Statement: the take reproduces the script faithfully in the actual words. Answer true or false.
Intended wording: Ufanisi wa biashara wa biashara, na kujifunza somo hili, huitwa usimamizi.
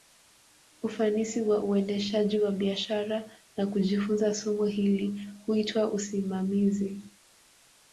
false